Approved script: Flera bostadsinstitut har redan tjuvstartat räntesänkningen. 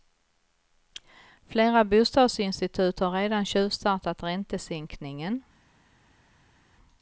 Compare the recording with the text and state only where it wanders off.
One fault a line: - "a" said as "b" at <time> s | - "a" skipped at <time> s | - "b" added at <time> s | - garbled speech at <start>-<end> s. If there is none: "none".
none